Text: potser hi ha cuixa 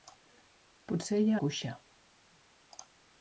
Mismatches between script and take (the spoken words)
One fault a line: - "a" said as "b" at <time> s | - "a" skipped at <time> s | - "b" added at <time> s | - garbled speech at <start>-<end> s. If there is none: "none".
none